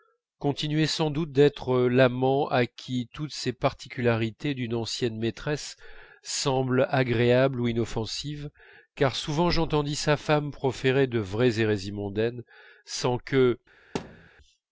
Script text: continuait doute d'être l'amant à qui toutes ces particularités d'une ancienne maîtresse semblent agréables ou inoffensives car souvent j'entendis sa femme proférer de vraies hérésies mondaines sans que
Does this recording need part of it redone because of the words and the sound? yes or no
yes